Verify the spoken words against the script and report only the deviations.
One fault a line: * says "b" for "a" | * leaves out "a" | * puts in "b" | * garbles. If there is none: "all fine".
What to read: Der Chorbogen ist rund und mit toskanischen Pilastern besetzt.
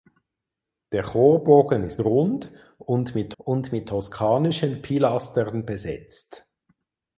* puts in "und mit"